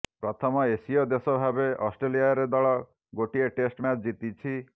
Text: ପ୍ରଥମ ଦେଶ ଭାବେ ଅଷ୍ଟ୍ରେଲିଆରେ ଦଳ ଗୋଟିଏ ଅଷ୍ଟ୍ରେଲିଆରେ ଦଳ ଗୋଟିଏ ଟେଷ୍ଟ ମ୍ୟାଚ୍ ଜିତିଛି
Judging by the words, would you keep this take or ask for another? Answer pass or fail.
fail